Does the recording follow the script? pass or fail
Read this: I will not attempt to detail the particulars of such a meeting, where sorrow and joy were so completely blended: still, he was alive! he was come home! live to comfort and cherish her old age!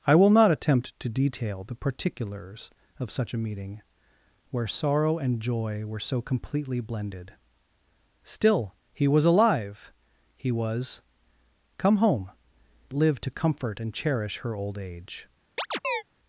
pass